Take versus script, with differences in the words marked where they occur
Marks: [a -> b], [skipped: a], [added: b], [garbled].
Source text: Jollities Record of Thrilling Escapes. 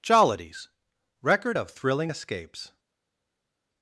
Jollities Record of Thrilling Escapes.